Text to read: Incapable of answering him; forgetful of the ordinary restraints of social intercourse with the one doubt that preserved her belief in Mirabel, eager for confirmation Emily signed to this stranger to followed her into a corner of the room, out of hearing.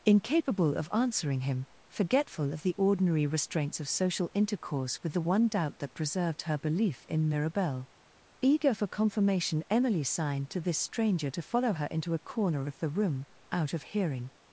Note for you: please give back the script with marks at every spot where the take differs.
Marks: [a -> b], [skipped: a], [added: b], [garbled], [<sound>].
Incapable of answering him; forgetful of the ordinary restraints of social intercourse with the one doubt that preserved her belief in Mirabel, eager for confirmation Emily signed to this stranger to [followed -> follow] her into a corner of the room, out of hearing.